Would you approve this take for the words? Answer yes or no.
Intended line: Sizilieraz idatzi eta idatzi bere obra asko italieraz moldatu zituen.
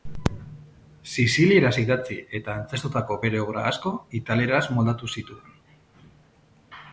no